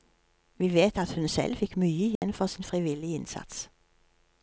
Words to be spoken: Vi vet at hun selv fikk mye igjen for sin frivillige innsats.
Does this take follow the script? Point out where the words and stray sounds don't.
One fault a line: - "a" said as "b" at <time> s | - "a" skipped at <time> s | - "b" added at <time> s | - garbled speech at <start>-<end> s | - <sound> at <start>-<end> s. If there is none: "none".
- dropout at 2.2-2.2 s